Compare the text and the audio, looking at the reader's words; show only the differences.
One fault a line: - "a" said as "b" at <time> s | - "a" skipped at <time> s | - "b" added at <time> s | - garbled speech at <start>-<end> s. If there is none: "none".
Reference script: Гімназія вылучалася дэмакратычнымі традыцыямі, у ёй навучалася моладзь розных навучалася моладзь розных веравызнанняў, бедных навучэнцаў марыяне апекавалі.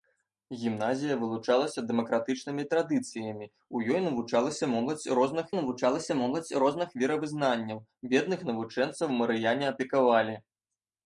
none